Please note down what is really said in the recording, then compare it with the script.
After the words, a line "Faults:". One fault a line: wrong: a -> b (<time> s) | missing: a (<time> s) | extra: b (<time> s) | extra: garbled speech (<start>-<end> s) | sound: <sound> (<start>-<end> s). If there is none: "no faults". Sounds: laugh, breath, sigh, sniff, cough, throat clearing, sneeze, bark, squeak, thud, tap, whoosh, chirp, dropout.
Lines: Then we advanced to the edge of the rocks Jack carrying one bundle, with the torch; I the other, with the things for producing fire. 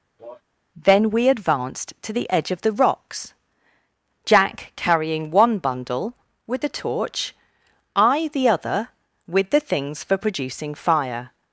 Then we advanced to the edge of the rocks Jack carrying one bundle, with the torch; I the other, with the things for producing fire.
Faults:
sound: cough (0.2-0.4 s)